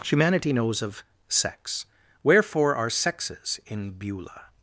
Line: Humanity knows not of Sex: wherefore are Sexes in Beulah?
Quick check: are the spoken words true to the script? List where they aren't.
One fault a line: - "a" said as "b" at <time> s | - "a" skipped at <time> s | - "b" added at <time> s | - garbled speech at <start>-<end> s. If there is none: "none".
- "not" skipped at 0.8 s